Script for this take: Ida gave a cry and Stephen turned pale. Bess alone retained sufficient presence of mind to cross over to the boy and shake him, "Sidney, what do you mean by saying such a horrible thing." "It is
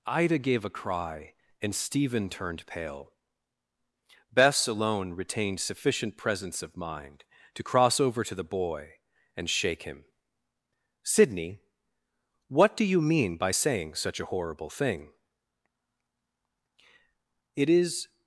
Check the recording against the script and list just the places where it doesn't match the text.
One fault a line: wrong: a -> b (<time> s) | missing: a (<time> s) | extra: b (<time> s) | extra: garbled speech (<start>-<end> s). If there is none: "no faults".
no faults